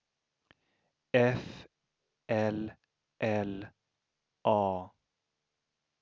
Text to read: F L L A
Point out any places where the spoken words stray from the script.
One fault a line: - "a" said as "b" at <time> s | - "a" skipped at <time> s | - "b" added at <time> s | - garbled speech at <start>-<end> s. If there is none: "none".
none